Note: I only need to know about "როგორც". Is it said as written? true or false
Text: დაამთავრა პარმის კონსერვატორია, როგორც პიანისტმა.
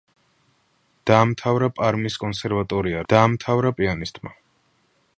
false